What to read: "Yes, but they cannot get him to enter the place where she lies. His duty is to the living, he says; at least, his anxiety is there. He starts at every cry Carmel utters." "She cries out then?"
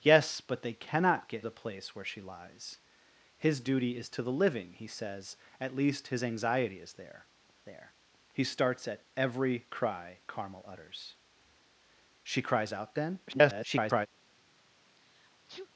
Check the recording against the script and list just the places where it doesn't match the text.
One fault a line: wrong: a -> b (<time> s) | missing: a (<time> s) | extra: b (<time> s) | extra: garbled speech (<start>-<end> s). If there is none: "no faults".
missing: him to enter (1.4 s)
extra: there (7.6 s)
extra: garbled speech (13.3-14.1 s)